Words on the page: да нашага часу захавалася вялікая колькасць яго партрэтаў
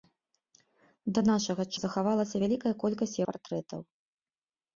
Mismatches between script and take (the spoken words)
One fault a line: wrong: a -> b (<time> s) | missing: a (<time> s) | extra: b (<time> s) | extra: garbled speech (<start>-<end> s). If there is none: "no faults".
missing: часу (1.6 s)
missing: яго (3.2 s)